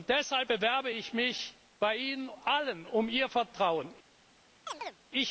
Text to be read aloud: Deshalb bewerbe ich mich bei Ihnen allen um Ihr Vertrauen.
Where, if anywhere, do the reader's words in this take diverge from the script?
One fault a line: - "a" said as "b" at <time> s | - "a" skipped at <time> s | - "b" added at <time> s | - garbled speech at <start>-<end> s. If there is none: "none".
none